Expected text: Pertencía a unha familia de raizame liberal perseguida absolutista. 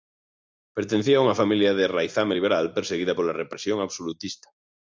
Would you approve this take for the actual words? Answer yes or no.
no